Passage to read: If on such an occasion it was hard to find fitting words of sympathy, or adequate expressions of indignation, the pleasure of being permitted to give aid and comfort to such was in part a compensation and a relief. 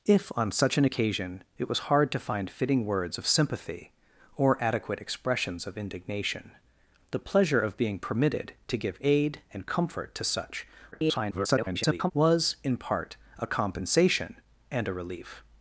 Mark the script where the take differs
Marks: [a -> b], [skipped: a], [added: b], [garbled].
If on such an occasion it was hard to find fitting words of sympathy, or adequate expressions of indignation, the pleasure of being permitted to give aid and comfort to such [garbled] was in part a compensation and a relief.